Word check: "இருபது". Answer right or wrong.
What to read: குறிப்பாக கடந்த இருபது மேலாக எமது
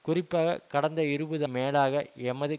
right